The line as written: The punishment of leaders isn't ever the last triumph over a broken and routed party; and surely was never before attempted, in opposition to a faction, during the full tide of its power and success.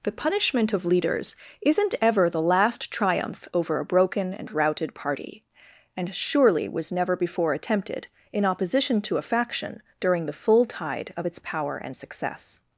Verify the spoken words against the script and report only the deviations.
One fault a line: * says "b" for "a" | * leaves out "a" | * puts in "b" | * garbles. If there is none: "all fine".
all fine